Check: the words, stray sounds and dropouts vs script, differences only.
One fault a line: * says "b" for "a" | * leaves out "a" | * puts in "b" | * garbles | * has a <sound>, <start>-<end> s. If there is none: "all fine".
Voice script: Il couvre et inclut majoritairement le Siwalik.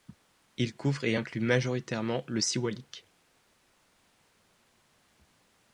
all fine